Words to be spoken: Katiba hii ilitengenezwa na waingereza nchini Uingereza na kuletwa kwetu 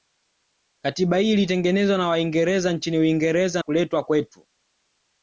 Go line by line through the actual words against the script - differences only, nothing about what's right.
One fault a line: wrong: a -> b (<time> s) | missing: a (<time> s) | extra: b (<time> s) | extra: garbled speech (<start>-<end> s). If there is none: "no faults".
missing: na (3.6 s)